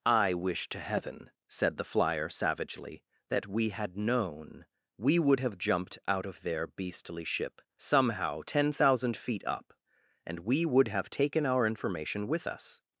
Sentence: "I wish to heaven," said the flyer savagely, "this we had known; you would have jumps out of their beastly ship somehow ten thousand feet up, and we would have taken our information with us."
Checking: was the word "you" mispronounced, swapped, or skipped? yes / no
yes